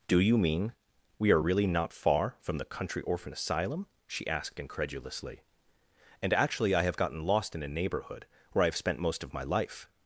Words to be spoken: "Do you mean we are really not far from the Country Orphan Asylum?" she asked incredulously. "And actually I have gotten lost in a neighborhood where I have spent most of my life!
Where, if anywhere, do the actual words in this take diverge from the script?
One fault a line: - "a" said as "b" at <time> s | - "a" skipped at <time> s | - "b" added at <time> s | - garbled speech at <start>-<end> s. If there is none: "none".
none